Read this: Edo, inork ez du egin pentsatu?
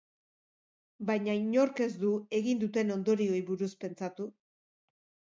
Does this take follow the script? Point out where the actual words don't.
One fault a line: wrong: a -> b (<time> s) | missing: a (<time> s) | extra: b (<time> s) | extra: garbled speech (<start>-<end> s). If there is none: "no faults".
wrong: Edo -> Baina (1.1 s)
extra: duten ondorioei buruz (2.6 s)